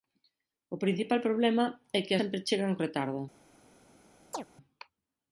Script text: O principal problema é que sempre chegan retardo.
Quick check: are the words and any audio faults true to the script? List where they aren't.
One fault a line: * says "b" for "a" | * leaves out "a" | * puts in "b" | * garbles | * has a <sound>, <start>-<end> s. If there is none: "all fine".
* has a chirp, 4.3-4.5 s